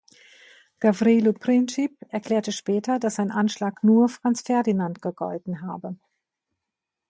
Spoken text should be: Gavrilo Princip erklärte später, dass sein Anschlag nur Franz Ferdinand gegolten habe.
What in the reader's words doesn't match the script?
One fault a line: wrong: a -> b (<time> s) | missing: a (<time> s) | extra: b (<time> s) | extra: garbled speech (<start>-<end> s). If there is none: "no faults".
no faults